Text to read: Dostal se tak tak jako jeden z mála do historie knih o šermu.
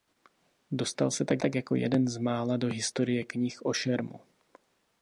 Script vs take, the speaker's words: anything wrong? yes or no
no